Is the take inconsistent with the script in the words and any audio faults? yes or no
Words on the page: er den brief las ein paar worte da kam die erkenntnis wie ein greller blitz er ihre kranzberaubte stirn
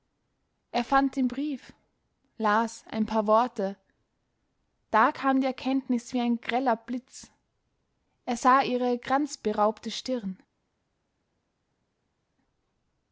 yes